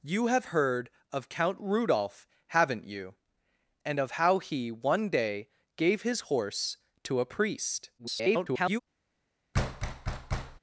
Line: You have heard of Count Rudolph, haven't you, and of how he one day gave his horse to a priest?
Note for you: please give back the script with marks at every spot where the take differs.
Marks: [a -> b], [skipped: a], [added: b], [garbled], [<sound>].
You have heard of Count Rudolph, haven't you, and of how he one day gave his horse to a priest? [garbled] [thud]